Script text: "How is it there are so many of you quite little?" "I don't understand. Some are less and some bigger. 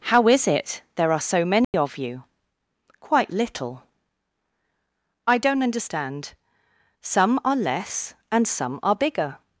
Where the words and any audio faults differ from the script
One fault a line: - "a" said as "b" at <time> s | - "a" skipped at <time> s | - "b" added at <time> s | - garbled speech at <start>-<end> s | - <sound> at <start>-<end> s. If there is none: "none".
- dropout at 1.6-1.7 s
- "are" added at 8.8 s